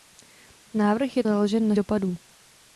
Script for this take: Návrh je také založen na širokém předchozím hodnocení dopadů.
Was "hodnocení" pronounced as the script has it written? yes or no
no